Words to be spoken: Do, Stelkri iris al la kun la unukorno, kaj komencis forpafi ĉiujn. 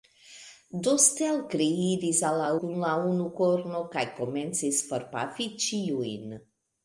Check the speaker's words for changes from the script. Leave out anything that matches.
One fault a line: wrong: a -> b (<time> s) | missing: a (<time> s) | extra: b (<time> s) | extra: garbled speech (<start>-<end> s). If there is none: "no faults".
no faults